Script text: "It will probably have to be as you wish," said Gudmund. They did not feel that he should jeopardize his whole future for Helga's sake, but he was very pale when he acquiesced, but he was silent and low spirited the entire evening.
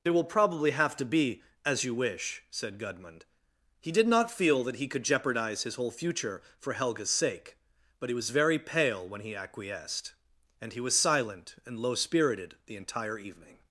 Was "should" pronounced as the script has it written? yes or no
no